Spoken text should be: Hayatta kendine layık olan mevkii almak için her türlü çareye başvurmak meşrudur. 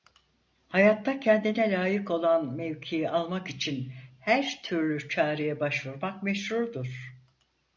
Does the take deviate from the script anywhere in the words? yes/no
no